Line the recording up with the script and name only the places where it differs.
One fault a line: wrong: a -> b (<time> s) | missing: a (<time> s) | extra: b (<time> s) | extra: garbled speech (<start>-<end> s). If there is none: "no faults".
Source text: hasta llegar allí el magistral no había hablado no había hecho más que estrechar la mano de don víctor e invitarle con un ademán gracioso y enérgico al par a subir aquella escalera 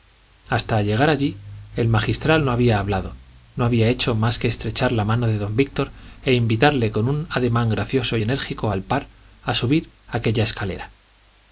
no faults